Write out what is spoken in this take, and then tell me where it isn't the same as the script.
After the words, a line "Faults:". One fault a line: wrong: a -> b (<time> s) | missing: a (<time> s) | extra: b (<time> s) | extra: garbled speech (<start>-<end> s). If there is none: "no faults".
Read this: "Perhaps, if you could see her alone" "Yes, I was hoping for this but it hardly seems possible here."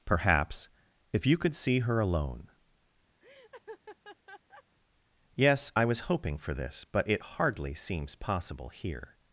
"Perhaps, if you could see her alone" "Yes, I was hoping for this but it hardly seems possible here."
Faults:
no faults